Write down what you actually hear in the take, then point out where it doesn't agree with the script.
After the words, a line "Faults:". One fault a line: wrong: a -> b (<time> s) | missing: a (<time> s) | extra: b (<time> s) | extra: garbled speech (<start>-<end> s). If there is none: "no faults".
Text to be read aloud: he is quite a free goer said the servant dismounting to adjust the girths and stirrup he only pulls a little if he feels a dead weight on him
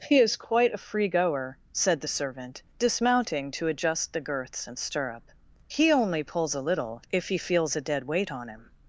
he is quite a free goer said the servant dismounting to adjust the girths and stirrup he only pulls a little if he feels a dead weight on him
Faults:
no faults